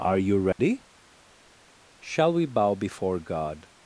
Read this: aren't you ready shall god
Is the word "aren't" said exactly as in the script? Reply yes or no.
no